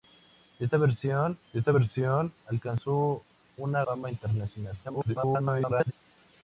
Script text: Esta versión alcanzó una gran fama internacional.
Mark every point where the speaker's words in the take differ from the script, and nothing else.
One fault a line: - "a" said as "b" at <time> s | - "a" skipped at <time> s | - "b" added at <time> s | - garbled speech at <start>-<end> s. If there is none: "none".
- "esta versión" added at 1.5 s
- "gran" skipped at 3.8 s
- garbled speech at 4.8-5.9 s